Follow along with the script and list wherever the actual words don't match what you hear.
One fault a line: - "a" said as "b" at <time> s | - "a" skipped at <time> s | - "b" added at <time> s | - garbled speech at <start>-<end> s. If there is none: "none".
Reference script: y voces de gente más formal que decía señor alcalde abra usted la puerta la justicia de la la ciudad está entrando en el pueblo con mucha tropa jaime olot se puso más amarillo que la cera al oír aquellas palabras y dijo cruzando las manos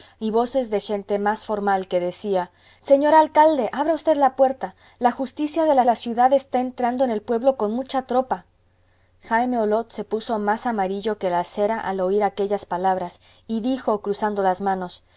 none